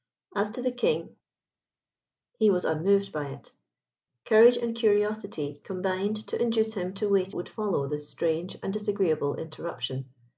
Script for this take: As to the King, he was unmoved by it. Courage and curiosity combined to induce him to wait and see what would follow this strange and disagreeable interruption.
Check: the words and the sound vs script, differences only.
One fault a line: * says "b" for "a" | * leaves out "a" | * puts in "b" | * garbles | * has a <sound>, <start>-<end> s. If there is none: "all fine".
* leaves out "and see what"